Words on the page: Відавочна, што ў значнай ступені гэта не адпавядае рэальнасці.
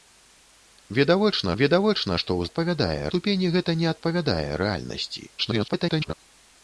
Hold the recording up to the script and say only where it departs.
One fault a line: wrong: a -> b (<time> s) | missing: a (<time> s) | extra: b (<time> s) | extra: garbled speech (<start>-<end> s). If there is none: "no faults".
extra: відавочна (1.6 s)
wrong: значнай -> адпавядае (2.5 s)
extra: garbled speech (5.4-6.1 s)